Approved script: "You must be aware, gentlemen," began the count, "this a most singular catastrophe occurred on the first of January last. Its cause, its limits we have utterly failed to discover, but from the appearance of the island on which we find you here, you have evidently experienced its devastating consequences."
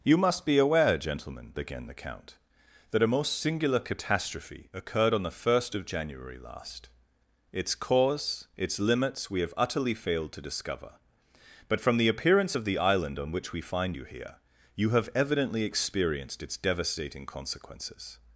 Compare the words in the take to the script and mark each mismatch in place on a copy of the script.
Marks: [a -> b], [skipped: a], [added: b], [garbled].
"You must be aware, gentlemen," began the count, ["this -> that] a most singular catastrophe occurred on the first of January last. Its cause, its limits we have utterly failed to discover, but from the appearance of the island on which we find you here, you have evidently experienced its devastating consequences."